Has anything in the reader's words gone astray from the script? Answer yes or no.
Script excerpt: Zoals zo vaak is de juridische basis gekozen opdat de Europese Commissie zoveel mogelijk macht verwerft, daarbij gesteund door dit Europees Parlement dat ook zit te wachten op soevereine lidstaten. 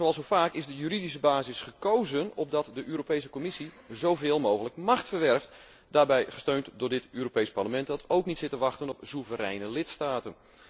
yes